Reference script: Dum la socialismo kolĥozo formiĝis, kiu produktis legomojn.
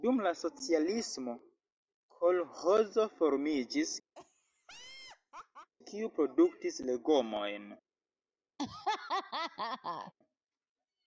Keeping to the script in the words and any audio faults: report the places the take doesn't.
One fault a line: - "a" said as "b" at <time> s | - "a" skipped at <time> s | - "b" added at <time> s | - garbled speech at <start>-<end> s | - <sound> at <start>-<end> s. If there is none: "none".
- laugh at 4.2-5.7 s
- laugh at 8.6-10.1 s